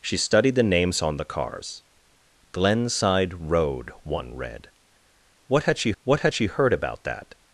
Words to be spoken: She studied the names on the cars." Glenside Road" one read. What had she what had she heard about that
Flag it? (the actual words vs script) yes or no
no